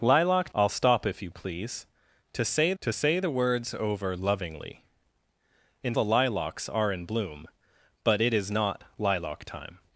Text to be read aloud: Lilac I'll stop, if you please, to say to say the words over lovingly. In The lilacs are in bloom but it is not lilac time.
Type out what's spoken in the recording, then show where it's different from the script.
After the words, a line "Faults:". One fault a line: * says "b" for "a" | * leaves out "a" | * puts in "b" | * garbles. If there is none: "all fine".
Lilac I'll stop, if you please, to say to say the words over lovingly. In The lilacs are in bloom but it is not lilac time.
Faults:
all fine